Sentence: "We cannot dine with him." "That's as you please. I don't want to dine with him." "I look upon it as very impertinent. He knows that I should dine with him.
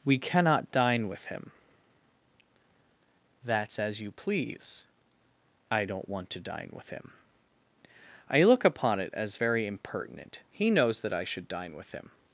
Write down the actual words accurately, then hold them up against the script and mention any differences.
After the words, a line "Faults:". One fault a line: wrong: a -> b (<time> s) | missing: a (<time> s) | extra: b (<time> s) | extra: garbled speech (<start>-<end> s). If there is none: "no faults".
"We cannot dine with him." "That's as you please. I don't want to dine with him." "I look upon it as very impertinent. He knows that I should dine with him.
Faults:
no faults